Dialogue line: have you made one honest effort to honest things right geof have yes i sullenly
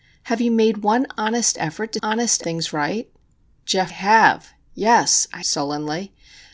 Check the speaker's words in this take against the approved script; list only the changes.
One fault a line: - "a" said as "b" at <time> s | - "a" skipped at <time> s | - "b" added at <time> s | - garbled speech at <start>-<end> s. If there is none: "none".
none